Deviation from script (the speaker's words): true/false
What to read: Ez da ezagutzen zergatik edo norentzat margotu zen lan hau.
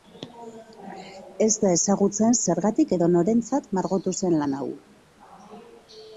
false